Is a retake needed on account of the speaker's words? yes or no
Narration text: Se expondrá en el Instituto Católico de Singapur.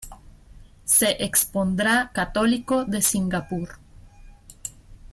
yes